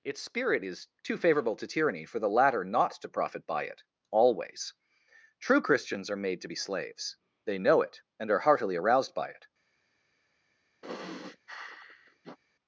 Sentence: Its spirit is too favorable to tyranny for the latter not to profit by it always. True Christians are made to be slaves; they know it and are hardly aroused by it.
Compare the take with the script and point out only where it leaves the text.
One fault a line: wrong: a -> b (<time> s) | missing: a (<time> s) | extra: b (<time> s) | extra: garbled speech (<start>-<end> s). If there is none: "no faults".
wrong: hardly -> heartily (8.4 s)